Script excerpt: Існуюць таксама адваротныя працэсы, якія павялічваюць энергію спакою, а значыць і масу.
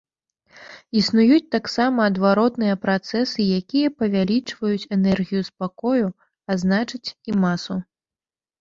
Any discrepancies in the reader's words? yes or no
no